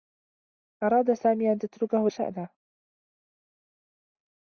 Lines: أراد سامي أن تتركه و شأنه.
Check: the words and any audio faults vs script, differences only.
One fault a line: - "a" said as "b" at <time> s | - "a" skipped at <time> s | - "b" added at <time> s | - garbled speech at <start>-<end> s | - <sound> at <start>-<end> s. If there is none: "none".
none